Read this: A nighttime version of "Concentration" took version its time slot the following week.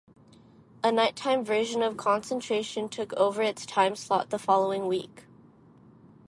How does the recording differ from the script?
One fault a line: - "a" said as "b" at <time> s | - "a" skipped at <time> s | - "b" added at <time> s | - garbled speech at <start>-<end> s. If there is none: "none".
- "version" said as "over" at 3.1 s